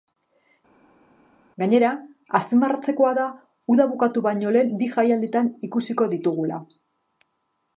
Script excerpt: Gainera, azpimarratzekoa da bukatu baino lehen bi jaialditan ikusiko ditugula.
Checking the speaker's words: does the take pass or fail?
fail